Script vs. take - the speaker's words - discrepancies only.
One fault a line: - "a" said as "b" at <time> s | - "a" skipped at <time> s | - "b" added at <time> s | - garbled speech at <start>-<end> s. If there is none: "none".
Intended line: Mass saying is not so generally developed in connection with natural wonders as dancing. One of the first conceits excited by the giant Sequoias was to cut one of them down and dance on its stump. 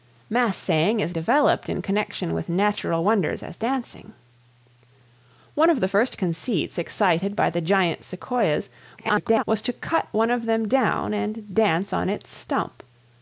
- "not so generally" skipped at 1.1 s
- garbled speech at 9.0-9.4 s